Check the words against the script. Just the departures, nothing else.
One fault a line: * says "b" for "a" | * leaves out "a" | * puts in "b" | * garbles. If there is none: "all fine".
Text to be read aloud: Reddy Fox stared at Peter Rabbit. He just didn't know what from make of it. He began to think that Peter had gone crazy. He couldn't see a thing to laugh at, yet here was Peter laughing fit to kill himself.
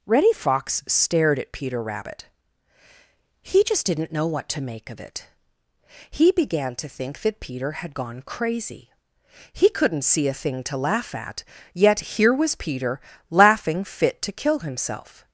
* says "to" for "from"